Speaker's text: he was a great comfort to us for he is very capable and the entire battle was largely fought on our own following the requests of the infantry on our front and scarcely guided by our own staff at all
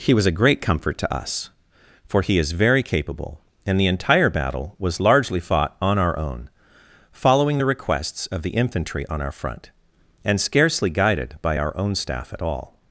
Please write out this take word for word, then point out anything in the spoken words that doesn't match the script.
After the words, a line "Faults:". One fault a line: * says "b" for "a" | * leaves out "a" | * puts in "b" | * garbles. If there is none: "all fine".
he was a great comfort to us for he is very capable and the entire battle was largely fought on our own following the requests of the infantry on our front and scarcely guided by our own staff at all
Faults:
all fine